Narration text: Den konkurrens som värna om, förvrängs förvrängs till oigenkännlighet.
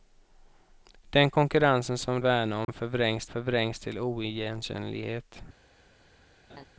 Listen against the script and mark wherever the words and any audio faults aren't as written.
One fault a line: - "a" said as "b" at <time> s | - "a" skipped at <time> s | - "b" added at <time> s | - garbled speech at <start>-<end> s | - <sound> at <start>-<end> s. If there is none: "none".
- dropout at 2.6-2.7 s
- laugh at 6.5-6.7 s